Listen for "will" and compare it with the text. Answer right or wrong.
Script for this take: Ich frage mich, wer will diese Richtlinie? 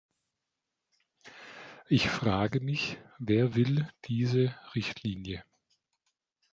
right